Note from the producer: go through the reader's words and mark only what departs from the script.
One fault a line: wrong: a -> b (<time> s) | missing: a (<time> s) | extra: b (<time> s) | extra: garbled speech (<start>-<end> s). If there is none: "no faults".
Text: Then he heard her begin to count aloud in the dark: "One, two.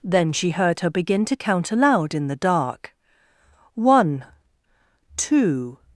wrong: he -> she (0.3 s)